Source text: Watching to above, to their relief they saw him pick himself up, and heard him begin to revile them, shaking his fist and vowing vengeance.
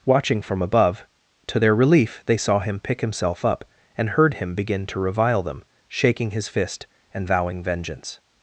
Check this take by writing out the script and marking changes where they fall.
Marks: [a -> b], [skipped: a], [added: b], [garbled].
Watching [to -> from] above, to their relief they saw him pick himself up, and heard him begin to revile them, shaking his fist and vowing vengeance.